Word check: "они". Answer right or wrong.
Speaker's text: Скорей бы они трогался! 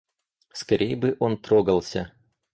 wrong